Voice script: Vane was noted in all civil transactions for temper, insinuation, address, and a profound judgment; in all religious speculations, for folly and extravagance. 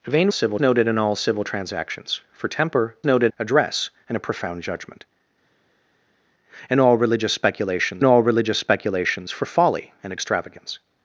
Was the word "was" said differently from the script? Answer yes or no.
yes